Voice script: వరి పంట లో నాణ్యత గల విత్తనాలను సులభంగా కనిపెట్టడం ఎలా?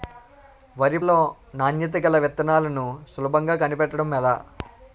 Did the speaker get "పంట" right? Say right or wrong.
wrong